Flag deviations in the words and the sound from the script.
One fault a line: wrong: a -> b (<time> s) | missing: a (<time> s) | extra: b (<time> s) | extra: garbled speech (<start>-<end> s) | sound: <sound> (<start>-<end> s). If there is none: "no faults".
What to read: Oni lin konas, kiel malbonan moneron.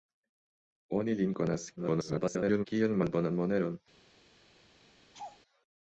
extra: garbled speech (1.8-2.7 s)
sound: laugh (5.1-5.4 s)